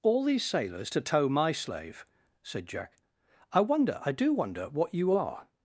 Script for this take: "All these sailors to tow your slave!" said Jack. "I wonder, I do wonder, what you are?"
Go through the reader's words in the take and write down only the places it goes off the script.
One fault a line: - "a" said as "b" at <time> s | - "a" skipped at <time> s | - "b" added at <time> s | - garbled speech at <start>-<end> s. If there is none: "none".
- "your" said as "my" at 1.3 s